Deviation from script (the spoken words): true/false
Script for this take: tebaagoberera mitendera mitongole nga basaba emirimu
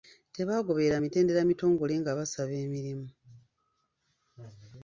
false